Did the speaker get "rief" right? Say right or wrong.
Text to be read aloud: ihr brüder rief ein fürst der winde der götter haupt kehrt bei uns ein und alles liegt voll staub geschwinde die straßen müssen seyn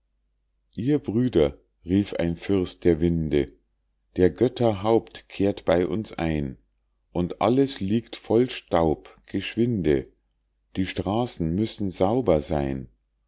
right